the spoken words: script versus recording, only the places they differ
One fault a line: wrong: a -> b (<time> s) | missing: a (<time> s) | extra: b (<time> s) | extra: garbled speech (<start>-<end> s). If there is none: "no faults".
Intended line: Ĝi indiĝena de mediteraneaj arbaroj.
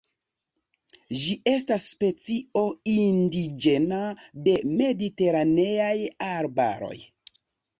extra: estas specio (1.5 s)